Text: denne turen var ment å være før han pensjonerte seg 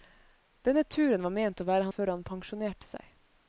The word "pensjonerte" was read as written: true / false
true